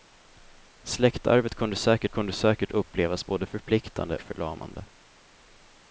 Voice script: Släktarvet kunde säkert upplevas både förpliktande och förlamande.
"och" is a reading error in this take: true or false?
true